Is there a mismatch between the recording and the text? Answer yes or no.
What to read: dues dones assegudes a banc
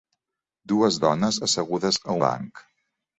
no